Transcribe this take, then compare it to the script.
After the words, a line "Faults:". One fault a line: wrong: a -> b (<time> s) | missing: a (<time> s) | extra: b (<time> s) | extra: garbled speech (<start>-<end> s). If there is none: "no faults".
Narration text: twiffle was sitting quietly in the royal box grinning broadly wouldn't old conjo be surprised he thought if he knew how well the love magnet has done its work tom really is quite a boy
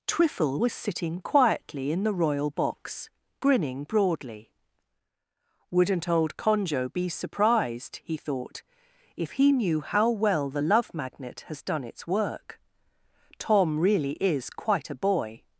twiffle was sitting quietly in the royal box grinning broadly wouldn't old conjo be surprised he thought if he knew how well the love magnet has done its work tom really is quite a boy
Faults:
no faults